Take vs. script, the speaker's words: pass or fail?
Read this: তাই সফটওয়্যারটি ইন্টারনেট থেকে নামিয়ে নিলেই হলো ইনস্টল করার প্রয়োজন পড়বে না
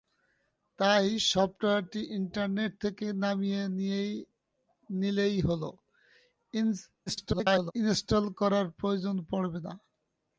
fail